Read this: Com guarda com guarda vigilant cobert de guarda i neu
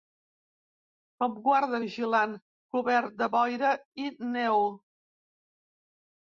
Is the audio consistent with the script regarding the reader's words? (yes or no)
no